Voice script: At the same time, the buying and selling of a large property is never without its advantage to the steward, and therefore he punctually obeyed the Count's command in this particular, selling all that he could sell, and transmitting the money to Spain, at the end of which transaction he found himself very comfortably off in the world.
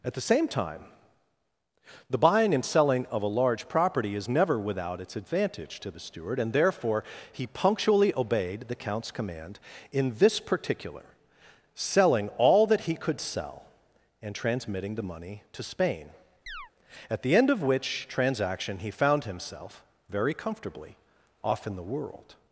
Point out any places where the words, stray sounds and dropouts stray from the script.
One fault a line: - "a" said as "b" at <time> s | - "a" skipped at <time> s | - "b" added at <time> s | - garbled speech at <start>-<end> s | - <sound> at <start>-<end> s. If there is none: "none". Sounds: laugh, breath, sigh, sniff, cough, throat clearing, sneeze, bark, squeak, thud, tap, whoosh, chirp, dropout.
- chirp at 16.5-16.7 s